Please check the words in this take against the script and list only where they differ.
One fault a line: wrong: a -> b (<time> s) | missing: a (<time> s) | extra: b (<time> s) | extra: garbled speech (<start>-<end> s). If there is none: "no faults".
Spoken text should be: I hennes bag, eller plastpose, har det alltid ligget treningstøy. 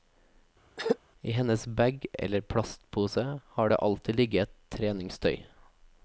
no faults